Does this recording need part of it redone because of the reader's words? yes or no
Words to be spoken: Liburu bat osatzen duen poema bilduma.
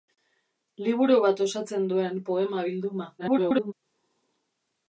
yes